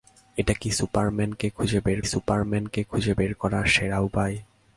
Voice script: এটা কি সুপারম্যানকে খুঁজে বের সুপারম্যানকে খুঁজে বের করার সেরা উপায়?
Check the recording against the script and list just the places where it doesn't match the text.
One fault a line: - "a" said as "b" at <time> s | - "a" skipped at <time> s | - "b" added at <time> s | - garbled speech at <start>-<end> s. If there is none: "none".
none